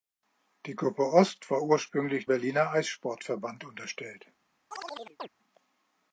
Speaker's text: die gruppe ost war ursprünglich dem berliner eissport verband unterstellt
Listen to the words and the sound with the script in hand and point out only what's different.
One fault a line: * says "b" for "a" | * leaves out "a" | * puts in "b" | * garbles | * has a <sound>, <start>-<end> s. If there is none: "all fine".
* leaves out "dem"
* has a chirp, 4.7-5.3 s